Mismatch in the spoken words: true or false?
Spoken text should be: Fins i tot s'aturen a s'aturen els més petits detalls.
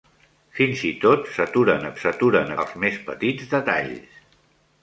false